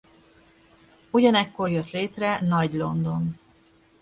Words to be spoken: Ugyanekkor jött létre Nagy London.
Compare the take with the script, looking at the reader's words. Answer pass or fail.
pass